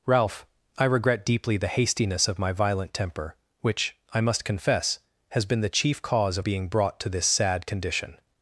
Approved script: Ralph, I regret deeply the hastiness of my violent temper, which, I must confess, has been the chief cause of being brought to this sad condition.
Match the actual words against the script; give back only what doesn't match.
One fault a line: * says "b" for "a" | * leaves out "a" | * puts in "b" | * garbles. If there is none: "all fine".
all fine